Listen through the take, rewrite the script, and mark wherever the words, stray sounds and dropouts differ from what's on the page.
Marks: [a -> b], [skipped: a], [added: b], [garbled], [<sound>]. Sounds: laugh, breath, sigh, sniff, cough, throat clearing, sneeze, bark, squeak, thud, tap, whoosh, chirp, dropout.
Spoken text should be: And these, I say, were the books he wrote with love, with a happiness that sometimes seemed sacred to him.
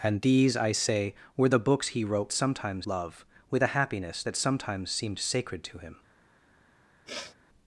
And these, I say, were the books he wrote [with -> sometimes] love, with a happiness that sometimes seemed sacred to him. [sniff]